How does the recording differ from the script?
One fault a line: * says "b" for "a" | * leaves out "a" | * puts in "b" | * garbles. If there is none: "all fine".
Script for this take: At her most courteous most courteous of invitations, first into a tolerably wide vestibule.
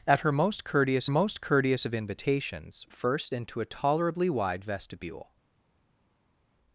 all fine